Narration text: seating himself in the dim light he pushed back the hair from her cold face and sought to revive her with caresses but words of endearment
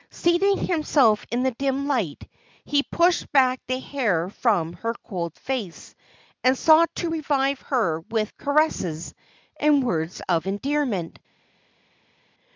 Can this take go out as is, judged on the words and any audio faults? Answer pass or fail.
fail